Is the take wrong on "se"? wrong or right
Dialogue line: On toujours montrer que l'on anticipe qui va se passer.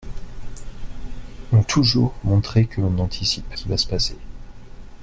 right